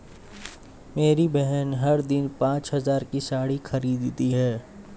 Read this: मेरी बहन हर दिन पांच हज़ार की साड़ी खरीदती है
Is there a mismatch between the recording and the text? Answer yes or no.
no